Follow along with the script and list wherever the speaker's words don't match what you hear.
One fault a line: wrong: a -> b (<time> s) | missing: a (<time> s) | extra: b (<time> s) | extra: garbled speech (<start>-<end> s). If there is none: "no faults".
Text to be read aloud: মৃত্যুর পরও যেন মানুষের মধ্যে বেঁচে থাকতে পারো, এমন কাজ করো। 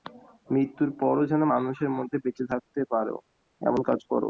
no faults